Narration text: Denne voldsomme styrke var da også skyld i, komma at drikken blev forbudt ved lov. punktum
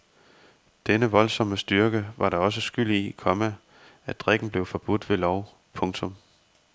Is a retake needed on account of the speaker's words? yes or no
no